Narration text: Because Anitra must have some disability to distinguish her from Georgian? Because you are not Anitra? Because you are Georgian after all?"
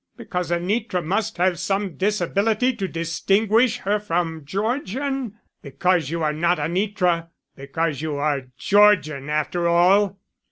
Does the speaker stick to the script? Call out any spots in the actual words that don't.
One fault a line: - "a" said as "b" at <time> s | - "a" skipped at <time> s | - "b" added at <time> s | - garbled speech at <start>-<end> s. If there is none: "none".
none